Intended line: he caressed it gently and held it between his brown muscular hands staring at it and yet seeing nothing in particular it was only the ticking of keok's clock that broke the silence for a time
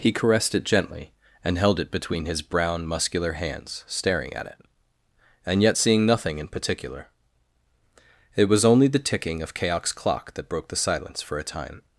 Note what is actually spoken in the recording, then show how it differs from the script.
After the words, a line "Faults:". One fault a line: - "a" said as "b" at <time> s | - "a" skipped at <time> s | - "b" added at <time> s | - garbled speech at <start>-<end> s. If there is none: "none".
he caressed it gently and held it between his brown muscular hands staring at it and yet seeing nothing in particular it was only the ticking of keok's clock that broke the silence for a time
Faults:
none